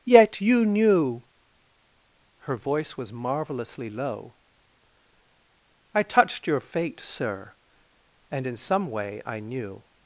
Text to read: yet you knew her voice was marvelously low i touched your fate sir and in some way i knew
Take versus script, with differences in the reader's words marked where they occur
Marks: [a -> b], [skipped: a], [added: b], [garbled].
yet you knew her voice was marvelously low i touched your fate sir and in some way i knew